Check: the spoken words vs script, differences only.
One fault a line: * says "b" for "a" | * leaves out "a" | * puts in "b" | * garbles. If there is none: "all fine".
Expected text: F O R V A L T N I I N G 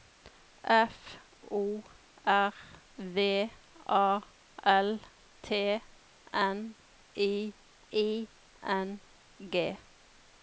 all fine